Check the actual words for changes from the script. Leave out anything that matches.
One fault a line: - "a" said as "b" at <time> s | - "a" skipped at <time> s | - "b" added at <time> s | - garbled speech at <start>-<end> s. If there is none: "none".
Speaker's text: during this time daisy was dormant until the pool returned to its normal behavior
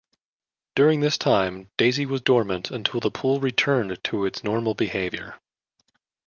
none